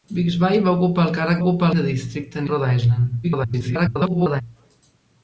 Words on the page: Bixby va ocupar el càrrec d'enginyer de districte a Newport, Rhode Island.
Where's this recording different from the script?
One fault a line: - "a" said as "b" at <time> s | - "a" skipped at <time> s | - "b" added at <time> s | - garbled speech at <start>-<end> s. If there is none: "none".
- "d'enginyer" said as "ocupar" at 1.4 s
- "Newport" skipped at 2.5 s
- garbled speech at 3.2-4.4 s